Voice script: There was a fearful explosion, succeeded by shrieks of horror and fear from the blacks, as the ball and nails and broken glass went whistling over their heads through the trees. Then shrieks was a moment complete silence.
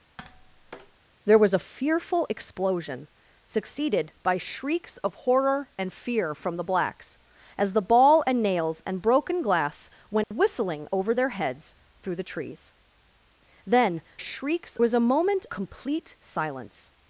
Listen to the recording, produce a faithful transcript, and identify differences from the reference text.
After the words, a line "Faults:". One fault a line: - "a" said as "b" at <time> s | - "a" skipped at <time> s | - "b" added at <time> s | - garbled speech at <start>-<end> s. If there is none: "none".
There was a fearful explosion, succeeded by shrieks of horror and fear from the blacks, as the ball and nails and broken glass went whistling over their heads through the trees. Then shrieks was a moment complete silence.
Faults:
none